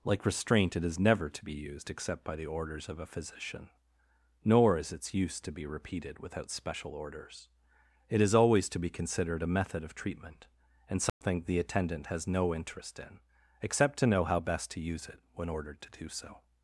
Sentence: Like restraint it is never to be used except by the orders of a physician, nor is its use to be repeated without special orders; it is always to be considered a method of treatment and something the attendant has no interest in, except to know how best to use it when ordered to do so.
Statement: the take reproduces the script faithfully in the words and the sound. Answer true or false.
false